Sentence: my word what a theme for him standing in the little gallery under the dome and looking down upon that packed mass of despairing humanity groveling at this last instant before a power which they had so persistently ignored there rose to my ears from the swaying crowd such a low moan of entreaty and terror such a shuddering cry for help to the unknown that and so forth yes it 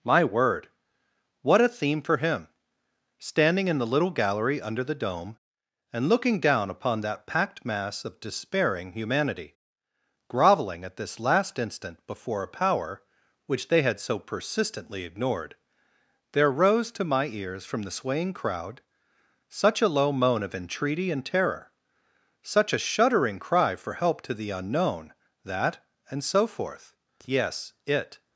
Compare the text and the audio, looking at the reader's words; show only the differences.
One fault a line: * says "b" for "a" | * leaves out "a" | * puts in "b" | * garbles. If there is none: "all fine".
all fine